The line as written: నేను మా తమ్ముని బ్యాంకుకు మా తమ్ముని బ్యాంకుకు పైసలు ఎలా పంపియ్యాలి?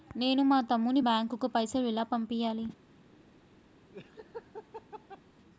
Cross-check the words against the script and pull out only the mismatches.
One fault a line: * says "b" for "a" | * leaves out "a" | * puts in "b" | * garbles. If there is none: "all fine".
* leaves out "మా తమ్ముని బ్యాంకుకు"